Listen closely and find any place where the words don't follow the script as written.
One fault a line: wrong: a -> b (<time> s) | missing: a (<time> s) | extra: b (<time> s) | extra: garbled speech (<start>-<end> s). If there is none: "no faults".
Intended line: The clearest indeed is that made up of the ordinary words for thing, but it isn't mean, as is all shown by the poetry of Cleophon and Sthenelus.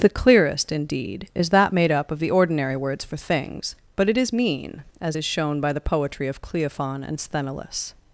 wrong: thing -> things (3.2 s)
wrong: isn't -> is (4.2 s)
missing: all (5.2 s)